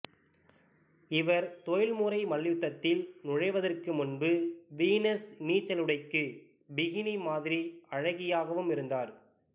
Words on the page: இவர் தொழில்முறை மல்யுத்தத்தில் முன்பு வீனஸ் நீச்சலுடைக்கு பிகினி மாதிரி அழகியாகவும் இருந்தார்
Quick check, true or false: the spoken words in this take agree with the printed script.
false